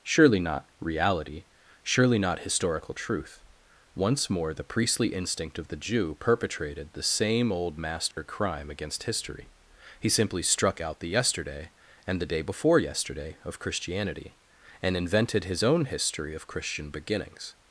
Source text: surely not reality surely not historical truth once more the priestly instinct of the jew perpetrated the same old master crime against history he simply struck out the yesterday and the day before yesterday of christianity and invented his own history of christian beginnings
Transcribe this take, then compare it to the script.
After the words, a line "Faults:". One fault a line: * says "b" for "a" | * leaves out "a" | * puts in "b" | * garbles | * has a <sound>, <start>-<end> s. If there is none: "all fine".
surely not reality surely not historical truth once more the priestly instinct of the jew perpetrated the same old master crime against history he simply struck out the yesterday and the day before yesterday of christianity and invented his own history of christian beginnings
Faults:
* has a dropout, 8.1-8.2 s